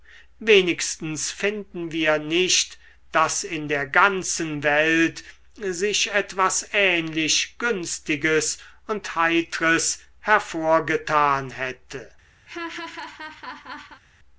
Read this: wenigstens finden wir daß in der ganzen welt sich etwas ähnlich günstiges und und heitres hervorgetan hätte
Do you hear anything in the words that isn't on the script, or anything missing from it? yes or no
yes